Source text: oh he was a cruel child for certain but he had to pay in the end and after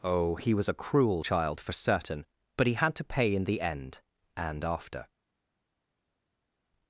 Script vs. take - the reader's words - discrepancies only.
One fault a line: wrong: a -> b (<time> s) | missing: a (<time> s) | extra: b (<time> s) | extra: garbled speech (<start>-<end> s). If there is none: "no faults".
no faults